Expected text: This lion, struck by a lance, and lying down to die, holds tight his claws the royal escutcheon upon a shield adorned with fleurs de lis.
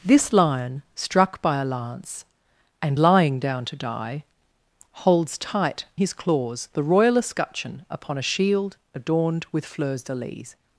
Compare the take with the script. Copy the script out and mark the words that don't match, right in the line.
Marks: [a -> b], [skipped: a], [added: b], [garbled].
This lion, struck by a lance, and lying down to die, holds tight his claws the royal escutcheon upon a shield adorned with fleurs de lis.